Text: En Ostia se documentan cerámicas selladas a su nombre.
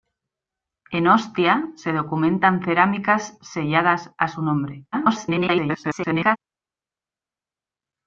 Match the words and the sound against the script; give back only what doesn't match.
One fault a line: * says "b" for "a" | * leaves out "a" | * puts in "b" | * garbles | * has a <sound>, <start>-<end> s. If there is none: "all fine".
* garbles